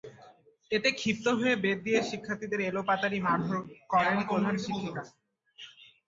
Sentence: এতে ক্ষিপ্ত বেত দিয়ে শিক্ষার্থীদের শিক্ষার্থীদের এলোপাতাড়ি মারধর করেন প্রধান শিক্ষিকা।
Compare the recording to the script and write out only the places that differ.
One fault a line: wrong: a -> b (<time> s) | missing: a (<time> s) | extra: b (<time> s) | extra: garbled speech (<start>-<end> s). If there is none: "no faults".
extra: হয়ে (1.4 s)
missing: শিক্ষার্থীদের (2.6 s)